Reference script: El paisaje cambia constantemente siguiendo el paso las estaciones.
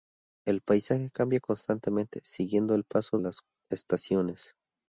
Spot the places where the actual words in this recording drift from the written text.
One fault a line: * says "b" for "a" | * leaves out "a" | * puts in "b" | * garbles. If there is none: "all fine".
all fine